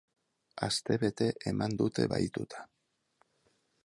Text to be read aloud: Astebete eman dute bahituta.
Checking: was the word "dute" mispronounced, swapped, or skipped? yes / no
no